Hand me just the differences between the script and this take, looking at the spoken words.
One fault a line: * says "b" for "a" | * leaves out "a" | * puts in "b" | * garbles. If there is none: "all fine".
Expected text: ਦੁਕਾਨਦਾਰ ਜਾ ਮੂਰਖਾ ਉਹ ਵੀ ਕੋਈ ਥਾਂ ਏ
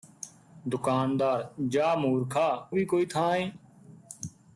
* leaves out "ਉਹ"